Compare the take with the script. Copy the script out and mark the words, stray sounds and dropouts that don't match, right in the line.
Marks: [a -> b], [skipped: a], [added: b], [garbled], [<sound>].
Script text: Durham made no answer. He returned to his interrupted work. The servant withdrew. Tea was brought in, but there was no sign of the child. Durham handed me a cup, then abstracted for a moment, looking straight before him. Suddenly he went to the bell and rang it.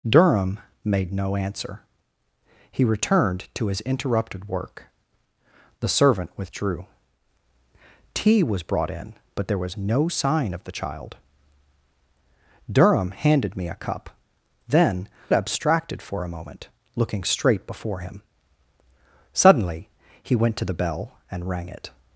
Durham made no answer. He returned to his interrupted work. The servant withdrew. Tea was brought in, but there was no sign of the child. Durham handed me a cup, then abstracted for a moment, looking straight before him. Suddenly he went to the bell and rang it.